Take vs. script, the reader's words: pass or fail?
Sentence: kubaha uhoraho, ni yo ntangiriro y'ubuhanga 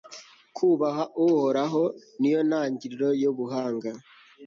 pass